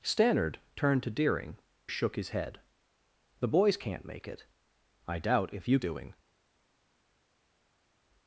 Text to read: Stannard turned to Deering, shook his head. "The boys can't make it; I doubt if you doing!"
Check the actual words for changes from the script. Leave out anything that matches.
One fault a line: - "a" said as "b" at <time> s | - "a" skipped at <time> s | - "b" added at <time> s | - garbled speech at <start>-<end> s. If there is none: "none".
none